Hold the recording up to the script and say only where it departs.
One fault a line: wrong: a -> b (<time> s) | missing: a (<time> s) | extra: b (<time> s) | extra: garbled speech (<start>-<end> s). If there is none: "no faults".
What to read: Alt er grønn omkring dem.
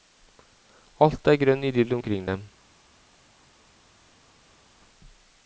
extra: idyll (1.7 s)